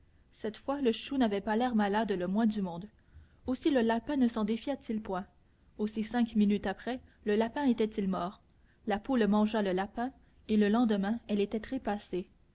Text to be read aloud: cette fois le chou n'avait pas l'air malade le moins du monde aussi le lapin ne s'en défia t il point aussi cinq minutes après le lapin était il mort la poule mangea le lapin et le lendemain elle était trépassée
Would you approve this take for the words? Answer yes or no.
yes